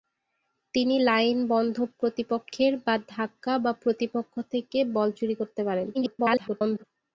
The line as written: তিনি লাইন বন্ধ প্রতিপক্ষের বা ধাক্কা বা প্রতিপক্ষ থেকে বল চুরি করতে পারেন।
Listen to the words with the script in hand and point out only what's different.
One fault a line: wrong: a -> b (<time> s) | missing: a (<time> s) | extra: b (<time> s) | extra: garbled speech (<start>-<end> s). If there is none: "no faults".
extra: garbled speech (5.9-6.8 s)